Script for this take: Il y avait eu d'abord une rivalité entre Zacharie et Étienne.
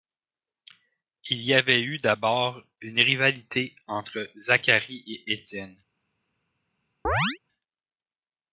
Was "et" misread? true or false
false